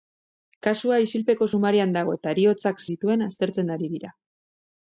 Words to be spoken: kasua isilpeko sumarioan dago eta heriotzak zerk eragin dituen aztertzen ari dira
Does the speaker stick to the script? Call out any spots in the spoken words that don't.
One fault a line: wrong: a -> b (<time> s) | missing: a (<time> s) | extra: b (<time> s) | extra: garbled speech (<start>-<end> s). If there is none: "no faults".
missing: zerk eragin (2.8 s)